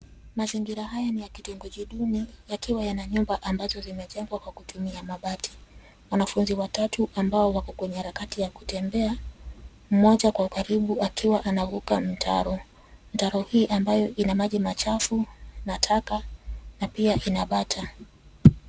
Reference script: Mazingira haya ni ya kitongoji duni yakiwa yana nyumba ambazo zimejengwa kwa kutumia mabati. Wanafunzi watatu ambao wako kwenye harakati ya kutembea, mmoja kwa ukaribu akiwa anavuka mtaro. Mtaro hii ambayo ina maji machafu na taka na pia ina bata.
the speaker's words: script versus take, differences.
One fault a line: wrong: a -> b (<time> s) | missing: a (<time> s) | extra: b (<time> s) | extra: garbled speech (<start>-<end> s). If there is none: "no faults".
no faults